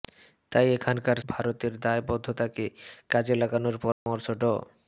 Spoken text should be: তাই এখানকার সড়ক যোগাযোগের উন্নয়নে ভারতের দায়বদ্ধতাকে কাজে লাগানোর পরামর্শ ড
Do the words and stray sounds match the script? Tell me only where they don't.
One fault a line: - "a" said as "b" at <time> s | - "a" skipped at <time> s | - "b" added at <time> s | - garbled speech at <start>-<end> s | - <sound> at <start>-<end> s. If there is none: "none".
- "সড়ক যোগাযোগের উন্নয়নে" skipped at 1.2 s
- dropout at 3.9-4.1 s